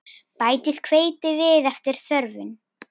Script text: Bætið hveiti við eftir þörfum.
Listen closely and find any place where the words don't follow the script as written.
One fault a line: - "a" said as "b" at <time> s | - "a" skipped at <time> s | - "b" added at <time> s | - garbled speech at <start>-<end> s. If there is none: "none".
none